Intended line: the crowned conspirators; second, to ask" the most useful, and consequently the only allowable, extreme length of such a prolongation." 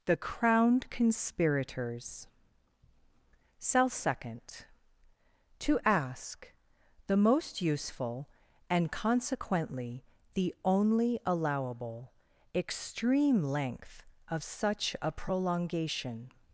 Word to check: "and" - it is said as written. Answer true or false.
true